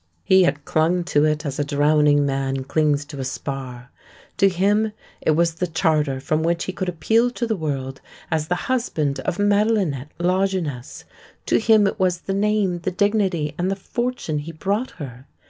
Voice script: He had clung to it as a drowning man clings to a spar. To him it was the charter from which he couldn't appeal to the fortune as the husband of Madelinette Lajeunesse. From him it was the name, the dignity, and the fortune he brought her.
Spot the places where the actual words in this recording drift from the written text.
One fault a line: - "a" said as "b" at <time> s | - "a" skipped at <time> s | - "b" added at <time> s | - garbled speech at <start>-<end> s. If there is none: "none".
- "couldn't" said as "could" at 6.7 s
- "fortune" said as "world" at 7.6 s
- "From" said as "To" at 11.4 s